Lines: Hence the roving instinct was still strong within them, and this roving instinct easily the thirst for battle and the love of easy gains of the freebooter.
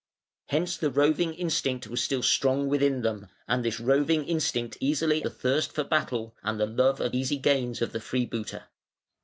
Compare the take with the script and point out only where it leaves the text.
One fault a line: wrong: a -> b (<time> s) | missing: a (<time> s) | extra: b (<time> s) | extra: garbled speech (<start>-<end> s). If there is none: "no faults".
no faults